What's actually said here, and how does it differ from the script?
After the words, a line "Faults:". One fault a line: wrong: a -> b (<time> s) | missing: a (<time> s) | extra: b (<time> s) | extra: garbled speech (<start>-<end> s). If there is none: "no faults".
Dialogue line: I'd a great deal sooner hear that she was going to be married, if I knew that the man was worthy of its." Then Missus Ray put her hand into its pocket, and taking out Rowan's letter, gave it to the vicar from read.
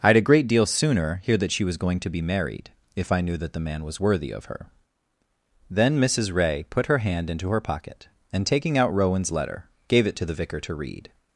I'd a great deal sooner hear that she was going to be married, if I knew that the man was worthy of her." Then Missus Ray put her hand into her pocket, and taking out Rowan's letter, gave it to the vicar to read.
Faults:
wrong: its -> her (4.4 s)
wrong: its -> her (7.5 s)
wrong: from -> to (10.6 s)